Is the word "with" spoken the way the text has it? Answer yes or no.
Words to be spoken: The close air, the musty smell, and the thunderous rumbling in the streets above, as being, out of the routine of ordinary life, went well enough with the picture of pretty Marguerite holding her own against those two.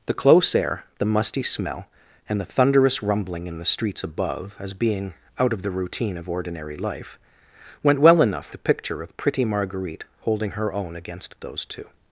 no